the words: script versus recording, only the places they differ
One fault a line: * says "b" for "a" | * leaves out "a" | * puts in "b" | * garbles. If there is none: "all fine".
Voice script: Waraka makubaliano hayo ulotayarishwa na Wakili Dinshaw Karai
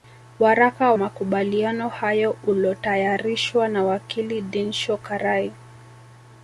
all fine